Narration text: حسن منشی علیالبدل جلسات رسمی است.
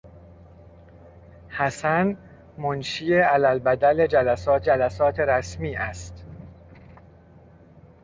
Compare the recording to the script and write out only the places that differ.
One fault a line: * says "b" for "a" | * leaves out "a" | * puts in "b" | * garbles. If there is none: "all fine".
* puts in "جلسات"